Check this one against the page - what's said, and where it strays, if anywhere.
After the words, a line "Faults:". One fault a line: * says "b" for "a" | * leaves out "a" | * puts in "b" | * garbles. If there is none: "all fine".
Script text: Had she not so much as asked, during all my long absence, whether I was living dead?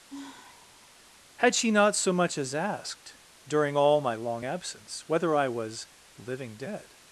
Had she not so much as asked, during all my long absence, whether I was living dead?
Faults:
all fine